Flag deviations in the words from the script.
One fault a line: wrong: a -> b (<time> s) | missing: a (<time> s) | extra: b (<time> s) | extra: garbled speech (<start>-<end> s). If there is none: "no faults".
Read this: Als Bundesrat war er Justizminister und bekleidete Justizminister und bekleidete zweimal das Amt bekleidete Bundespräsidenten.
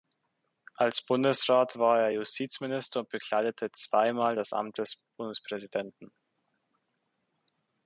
missing: Justizminister und bekleidete (3.7 s)
wrong: bekleidete -> des (4.8 s)